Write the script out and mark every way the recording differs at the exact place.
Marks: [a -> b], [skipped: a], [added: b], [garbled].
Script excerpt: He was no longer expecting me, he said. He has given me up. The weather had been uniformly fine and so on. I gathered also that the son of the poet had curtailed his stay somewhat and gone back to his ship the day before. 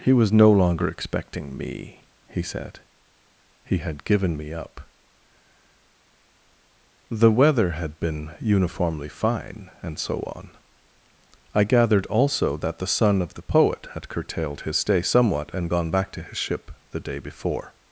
He was no longer expecting me, he said. He [has -> had] given me up. The weather had been uniformly fine and so on. I gathered also that the son of the poet had curtailed his stay somewhat and gone back to his ship the day before.